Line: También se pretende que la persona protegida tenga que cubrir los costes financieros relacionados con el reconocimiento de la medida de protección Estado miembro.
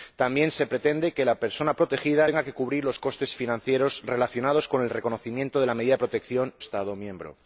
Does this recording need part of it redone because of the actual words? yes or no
no